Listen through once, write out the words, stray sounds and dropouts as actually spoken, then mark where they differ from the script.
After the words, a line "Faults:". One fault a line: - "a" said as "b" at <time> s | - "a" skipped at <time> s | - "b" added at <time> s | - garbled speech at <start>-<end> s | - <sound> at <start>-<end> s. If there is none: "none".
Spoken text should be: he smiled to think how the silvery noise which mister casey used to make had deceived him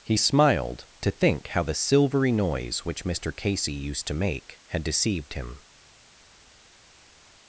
he smiled to think how the silvery noise which mister casey used to make had deceived him
Faults:
none